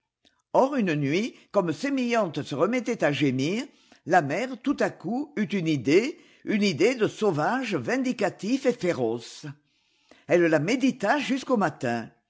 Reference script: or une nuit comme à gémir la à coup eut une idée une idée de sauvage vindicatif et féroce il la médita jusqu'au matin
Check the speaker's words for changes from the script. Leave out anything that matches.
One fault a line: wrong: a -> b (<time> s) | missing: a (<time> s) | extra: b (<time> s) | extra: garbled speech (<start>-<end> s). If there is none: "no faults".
extra: sémillante se remettait (1.7 s)
extra: mère tout (4.2 s)
wrong: il -> elle (10.3 s)